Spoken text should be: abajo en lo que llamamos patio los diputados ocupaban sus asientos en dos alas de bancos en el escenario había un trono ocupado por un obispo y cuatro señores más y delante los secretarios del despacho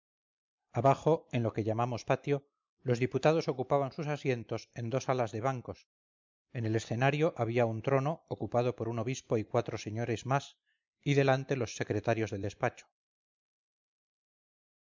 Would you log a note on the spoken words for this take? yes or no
no